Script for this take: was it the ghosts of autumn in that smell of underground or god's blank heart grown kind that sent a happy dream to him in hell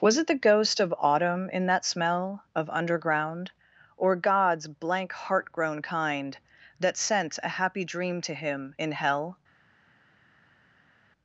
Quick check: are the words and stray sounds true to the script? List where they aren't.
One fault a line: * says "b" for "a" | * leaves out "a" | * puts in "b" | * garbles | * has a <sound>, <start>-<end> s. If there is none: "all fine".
* says "ghost" for "ghosts"